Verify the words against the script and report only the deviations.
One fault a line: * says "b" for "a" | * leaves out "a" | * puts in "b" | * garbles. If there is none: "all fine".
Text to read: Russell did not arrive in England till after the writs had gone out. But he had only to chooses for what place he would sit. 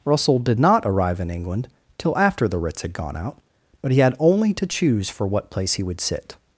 * says "choose" for "chooses"